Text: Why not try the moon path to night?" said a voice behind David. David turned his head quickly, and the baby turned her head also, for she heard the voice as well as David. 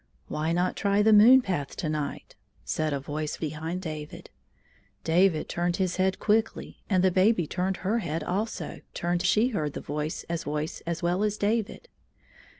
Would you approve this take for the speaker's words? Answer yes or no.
no